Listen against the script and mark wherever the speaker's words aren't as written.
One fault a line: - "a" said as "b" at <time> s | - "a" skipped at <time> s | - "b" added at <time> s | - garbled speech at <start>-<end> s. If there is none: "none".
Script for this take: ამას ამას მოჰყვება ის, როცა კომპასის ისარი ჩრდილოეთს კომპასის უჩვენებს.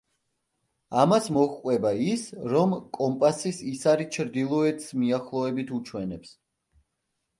- "ამას" skipped at 1.3 s
- "როცა" said as "რომ" at 2.6 s
- "კომპასის" said as "მიახლოებით" at 5.0 s